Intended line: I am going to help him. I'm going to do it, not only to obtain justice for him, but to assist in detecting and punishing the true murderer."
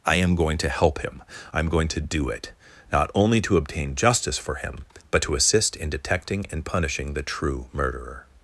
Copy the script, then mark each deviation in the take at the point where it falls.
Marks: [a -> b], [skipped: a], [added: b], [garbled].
I am going to help him. I'm going to do it, not only to obtain justice for him, but to assist in detecting and punishing the true murderer."